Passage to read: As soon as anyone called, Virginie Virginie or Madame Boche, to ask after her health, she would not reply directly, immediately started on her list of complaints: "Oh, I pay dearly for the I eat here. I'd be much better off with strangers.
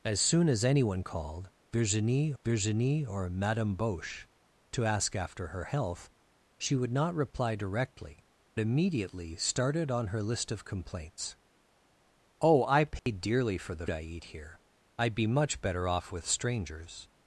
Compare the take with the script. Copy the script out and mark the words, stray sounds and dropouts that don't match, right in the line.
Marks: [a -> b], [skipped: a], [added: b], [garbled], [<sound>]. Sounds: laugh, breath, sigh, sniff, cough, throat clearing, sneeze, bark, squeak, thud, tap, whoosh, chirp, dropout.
As soon as anyone called, Virginie Virginie or Madame Boche, to ask after her health, she would not reply directly, immediately started on her list of complaints: "Oh, I pay [dropout] dearly for the I eat here. I'd be much better off with strangers.